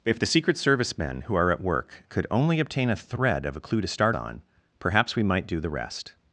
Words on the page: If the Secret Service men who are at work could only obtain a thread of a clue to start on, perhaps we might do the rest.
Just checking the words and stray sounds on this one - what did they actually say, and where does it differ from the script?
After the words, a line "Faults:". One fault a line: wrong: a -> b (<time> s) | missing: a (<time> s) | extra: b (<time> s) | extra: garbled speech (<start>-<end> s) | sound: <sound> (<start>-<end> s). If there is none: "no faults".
If the Secret Service men who are at work could only obtain a thread of a clue to start on, perhaps we might do the rest.
Faults:
no faults